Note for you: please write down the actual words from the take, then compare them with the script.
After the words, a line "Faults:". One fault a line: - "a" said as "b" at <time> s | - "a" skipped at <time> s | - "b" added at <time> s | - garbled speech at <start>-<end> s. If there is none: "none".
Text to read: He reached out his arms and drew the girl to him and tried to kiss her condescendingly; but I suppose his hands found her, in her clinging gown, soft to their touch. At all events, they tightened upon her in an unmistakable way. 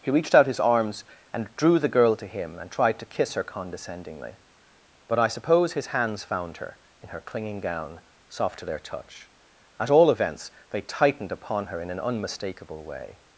He reached out his arms and drew the girl to him and tried to kiss her condescendingly; but I suppose his hands found her, in her clinging gown, soft to their touch. At all events, they tightened upon her in an unmistakable way.
Faults:
none